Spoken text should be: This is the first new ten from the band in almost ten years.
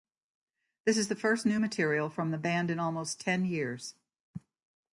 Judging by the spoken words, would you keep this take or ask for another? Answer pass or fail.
fail